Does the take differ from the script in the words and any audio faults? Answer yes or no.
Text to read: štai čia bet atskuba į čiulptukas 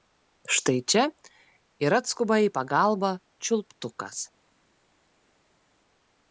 yes